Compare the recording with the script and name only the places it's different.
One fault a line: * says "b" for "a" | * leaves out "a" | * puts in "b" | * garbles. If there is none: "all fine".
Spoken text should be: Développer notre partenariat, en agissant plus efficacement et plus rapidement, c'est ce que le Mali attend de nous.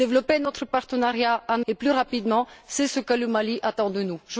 * leaves out "agissant plus efficacement"